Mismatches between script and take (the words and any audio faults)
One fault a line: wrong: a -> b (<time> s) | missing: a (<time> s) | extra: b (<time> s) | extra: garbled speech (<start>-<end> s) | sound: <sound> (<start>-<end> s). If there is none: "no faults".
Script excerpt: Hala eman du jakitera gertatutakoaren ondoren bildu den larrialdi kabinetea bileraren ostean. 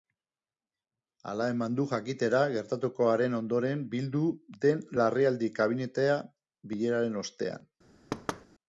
sound: thud (8.1-8.5 s)